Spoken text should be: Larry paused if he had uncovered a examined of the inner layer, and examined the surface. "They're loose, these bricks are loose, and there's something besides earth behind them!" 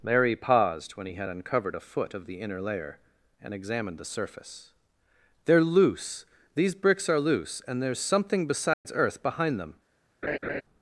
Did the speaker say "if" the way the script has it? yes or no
no